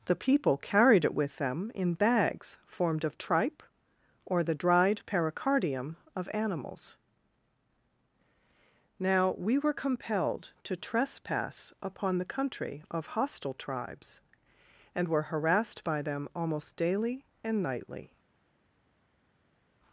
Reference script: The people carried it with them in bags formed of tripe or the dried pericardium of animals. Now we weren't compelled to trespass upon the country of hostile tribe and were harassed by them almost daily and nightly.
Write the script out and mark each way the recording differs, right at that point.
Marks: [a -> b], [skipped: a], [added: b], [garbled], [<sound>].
The people carried it with them in bags formed of tripe or the dried pericardium of animals. Now we [weren't -> were] compelled to trespass upon the country of hostile [tribe -> tribes] and were harassed by them almost daily and nightly.